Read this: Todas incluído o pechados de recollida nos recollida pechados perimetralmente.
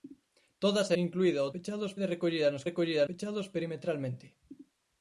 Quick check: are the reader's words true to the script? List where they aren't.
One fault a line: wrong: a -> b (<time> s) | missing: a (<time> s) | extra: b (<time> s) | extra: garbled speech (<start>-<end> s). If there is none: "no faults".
no faults